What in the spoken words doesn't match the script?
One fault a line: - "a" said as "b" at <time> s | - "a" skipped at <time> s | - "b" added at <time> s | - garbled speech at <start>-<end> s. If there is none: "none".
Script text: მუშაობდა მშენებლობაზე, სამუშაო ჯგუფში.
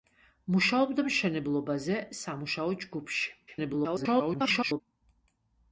- garbled speech at 3.5-4.8 s